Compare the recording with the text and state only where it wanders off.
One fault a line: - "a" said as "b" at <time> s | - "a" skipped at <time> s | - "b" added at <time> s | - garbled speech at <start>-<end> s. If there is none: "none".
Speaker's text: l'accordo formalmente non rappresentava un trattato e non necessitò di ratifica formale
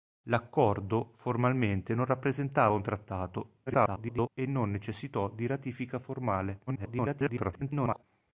- garbled speech at 3.7-4.3 s
- garbled speech at 6.7-8.0 s